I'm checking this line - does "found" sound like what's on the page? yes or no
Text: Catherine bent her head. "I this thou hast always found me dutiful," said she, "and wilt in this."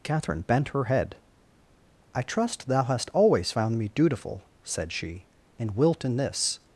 yes